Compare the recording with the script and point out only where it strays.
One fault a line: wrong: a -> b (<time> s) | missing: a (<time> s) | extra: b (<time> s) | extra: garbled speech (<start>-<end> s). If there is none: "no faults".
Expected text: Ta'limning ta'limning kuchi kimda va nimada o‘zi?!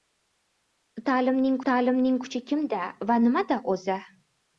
no faults